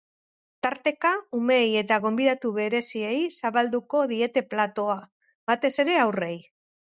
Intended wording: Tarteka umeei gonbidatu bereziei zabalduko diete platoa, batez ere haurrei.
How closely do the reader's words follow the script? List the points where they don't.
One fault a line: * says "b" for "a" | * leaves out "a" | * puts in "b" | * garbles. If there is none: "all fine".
* puts in "eta"